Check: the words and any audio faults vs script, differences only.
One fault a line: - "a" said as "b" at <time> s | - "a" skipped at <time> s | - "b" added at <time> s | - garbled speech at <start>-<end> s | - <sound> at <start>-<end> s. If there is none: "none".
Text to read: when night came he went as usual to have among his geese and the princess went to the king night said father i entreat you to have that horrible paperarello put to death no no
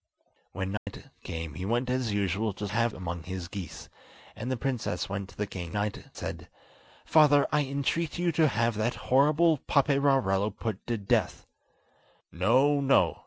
- dropout at 0.8-0.9 s